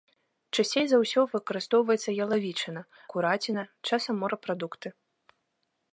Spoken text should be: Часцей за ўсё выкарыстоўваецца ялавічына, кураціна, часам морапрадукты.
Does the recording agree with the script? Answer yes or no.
yes